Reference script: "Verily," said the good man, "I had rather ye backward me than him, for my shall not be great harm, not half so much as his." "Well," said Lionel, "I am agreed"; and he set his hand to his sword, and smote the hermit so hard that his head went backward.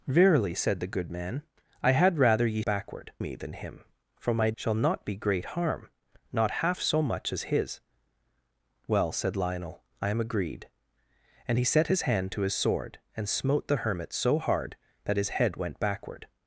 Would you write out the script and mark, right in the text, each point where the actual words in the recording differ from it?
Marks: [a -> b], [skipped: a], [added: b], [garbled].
"Verily," said the good man, "I had rather ye backward me than him, for my shall not be great harm, not half so much as his." "Well," said Lionel, "I am agreed"; and he set his hand to his sword, and smote the hermit so hard that his head went backward.